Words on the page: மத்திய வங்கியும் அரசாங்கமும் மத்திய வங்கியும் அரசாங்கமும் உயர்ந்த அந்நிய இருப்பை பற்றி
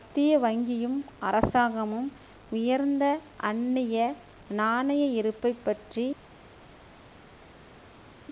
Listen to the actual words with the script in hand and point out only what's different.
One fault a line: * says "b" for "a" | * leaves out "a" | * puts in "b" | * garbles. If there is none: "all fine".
* leaves out "மத்திய வங்கியும் அரசாங்கமும்"
* puts in "நாணய"